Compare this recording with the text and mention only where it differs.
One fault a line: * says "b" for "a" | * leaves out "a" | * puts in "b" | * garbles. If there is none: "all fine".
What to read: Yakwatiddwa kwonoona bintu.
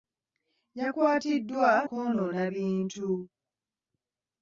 all fine